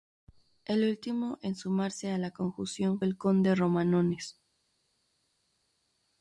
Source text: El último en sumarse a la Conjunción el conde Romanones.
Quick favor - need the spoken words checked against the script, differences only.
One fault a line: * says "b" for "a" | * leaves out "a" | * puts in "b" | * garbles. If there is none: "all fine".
all fine